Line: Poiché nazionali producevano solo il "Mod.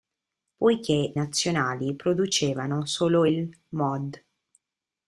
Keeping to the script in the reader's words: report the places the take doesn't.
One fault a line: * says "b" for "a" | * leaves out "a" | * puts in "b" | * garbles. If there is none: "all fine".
all fine